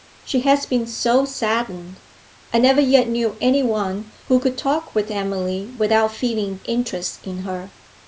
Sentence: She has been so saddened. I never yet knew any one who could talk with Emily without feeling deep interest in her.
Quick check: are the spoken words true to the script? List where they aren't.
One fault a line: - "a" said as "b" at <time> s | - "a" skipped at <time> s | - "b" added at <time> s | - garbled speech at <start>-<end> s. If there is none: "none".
- "deep" skipped at 6.6 s